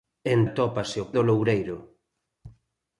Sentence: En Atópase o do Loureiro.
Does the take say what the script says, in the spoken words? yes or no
yes